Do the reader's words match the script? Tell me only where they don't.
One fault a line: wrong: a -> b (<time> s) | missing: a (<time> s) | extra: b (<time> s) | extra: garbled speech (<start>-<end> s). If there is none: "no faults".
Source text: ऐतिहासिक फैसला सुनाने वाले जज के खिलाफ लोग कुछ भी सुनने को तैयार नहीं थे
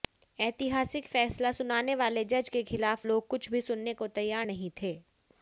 no faults